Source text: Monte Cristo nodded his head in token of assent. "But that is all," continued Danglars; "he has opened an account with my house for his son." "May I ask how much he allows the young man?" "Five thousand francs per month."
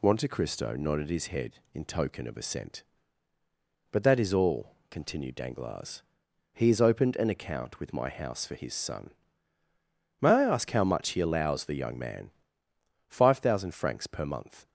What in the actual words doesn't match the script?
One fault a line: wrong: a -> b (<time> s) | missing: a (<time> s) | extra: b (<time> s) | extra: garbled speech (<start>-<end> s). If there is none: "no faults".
no faults